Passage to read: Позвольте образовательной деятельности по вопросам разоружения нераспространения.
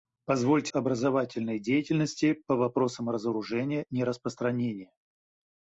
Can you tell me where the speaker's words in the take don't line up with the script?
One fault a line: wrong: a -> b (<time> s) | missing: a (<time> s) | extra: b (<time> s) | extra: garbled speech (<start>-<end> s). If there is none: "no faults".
no faults